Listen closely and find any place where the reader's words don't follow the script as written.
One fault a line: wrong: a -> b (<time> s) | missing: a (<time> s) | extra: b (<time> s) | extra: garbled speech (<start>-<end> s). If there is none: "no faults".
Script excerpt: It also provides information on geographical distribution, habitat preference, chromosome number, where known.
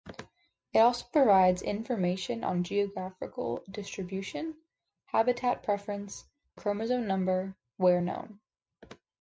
no faults